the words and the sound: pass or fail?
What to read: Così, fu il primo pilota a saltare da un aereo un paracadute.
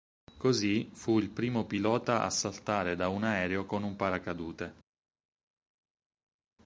fail